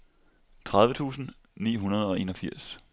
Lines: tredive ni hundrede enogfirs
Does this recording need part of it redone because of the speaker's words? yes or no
yes